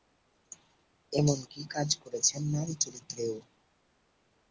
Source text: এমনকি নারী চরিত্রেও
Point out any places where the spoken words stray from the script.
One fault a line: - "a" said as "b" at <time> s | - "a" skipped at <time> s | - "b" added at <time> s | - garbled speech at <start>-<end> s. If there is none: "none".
- "কাজ করেছেন" added at 1.7 s